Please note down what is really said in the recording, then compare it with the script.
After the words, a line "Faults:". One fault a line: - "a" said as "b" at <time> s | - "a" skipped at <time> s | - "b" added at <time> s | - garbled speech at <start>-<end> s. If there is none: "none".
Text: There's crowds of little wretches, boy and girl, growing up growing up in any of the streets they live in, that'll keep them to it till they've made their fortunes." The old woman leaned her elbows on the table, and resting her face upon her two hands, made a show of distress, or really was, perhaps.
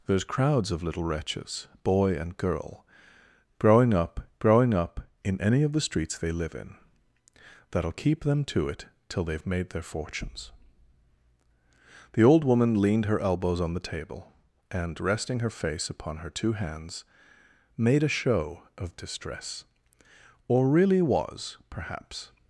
There's crowds of little wretches, boy and girl, growing up growing up in any of the streets they live in, that'll keep them to it till they've made their fortunes." The old woman leaned her elbows on the table, and resting her face upon her two hands, made a show of distress, or really was, perhaps.
Faults:
none